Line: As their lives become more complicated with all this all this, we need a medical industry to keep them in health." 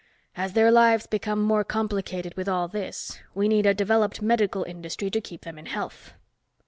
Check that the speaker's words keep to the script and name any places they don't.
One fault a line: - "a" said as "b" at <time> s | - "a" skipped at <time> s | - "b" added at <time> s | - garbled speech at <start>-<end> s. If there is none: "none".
- "all this" skipped at 3.2 s
- "developed" added at 3.8 s